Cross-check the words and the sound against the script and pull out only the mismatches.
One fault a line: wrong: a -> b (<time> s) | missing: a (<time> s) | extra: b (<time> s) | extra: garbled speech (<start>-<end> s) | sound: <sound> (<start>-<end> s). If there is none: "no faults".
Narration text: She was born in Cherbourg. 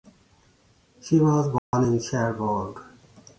sound: dropout (1.6-1.7 s)